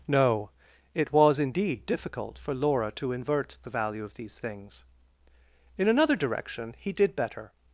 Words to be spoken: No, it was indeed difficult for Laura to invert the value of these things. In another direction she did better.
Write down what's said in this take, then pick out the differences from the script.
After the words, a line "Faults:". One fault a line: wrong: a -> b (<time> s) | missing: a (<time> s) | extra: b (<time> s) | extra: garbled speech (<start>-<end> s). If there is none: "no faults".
No, it was indeed difficult for Laura to invert the value of these things. In another direction he did better.
Faults:
wrong: she -> he (6.8 s)